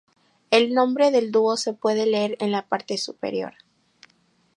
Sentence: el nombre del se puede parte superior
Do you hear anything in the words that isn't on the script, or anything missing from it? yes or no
yes